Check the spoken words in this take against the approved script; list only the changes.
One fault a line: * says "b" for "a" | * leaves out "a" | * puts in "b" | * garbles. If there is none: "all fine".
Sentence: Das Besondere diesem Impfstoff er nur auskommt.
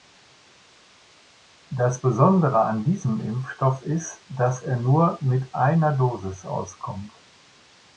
* puts in "an"
* puts in "ist dass"
* puts in "mit einer Dosis"